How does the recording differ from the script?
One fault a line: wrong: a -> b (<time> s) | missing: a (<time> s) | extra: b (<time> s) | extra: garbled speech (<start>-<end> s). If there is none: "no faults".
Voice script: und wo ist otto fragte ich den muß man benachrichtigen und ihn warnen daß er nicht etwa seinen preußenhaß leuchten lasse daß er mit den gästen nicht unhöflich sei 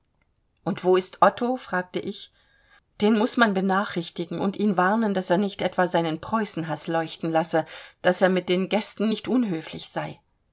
no faults